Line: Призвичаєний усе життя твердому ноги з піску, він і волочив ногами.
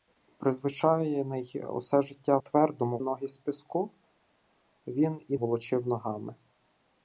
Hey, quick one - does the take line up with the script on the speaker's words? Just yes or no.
yes